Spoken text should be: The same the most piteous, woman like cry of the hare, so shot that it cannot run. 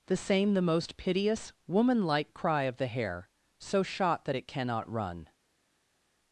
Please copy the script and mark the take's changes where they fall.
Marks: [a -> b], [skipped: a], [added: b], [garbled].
The same the most piteous, woman like cry of the hare, so shot that it cannot run.